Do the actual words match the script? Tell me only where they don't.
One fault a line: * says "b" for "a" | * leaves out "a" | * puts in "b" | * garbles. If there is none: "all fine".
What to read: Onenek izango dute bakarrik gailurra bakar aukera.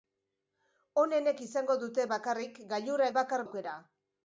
all fine